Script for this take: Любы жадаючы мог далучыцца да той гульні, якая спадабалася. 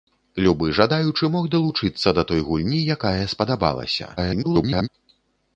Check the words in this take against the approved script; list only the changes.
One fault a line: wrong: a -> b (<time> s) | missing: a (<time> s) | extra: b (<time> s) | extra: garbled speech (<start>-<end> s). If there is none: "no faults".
extra: garbled speech (4.2-4.9 s)